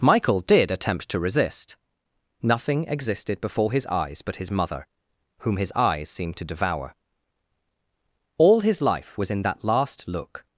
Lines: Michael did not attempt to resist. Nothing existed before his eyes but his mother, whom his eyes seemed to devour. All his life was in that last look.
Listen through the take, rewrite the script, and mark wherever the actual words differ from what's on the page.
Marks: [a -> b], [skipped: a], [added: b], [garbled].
Michael did [skipped: not] attempt to resist. Nothing existed before his eyes but his mother, whom his eyes seemed to devour. All his life was in that last look.